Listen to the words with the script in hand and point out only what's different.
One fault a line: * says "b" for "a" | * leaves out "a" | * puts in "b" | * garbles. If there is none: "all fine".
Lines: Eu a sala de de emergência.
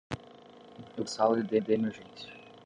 all fine